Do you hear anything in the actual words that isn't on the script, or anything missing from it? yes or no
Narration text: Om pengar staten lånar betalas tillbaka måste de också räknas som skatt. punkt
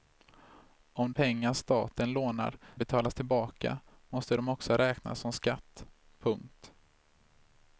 no